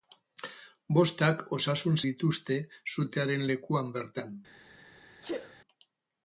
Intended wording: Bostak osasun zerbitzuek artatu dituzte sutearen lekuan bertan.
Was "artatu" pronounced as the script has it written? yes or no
no